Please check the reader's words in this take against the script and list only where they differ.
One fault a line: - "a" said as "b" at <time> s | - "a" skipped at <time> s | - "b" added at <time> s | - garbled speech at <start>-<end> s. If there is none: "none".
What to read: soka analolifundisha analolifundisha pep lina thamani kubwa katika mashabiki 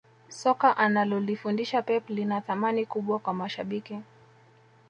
- "analolifundisha" skipped at 1.8 s
- "katika" said as "kwa" at 3.2 s